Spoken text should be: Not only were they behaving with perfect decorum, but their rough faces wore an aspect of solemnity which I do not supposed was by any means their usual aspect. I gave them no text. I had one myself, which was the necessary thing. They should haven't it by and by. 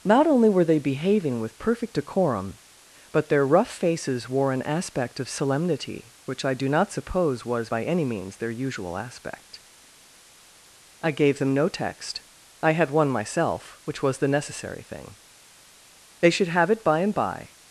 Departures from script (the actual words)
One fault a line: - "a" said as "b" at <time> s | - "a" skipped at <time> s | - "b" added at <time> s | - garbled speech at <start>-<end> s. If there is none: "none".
- "supposed" said as "suppose" at 6.9 s
- "haven't" said as "have" at 16.5 s